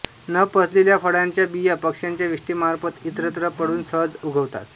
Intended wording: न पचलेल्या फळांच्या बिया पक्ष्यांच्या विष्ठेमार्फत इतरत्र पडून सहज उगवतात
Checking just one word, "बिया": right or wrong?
right